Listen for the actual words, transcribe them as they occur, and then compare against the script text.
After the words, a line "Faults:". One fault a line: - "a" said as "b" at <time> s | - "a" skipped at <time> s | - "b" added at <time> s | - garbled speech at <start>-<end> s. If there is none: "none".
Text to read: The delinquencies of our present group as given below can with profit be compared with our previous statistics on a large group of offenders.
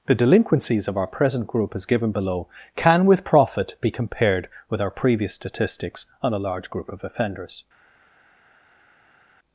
The delinquencies of our present group as given below can with profit be compared with our previous statistics on a large group of offenders.
Faults:
none